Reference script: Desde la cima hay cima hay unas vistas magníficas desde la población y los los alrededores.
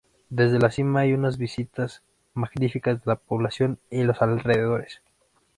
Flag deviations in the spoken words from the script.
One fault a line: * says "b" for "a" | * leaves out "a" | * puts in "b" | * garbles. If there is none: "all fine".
* leaves out "cima hay"
* says "de" for "desde"
* leaves out "los"